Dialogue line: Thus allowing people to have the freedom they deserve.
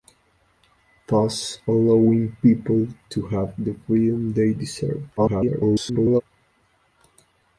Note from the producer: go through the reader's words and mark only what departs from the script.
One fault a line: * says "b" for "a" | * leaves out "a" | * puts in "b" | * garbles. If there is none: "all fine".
* garbles